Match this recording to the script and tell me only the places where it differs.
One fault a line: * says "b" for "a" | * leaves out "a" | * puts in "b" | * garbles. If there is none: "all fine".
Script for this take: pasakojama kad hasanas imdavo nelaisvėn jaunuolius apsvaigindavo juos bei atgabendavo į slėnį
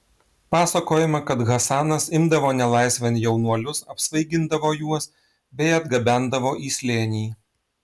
all fine